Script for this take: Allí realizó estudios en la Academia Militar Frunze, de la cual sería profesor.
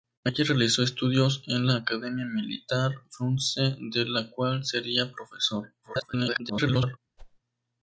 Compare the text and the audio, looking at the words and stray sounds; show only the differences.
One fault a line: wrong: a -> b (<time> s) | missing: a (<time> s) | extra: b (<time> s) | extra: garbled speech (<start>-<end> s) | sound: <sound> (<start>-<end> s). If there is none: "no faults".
extra: garbled speech (5.8-7.0 s)
sound: whoosh (7.2-7.4 s)